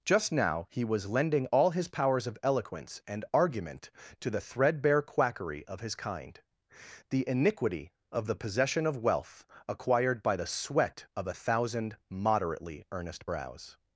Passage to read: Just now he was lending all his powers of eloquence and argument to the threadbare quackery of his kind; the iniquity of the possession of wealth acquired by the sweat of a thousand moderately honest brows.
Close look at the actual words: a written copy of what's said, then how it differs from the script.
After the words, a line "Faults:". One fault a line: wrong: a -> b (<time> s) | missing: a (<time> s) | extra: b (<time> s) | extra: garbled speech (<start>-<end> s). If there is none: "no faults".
Just now he was lending all his powers of eloquence and argument to the threadbare quackery of his kind; the iniquity of the possession of wealth acquired by the sweat of a thousand moderately earnest brows.
Faults:
wrong: honest -> earnest (12.9 s)